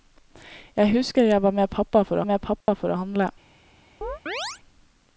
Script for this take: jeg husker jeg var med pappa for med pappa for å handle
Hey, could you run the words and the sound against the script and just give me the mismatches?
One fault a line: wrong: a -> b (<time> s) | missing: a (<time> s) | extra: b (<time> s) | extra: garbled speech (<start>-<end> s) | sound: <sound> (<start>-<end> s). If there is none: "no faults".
sound: dropout (2.6-2.7 s)
sound: chirp (4.0-4.6 s)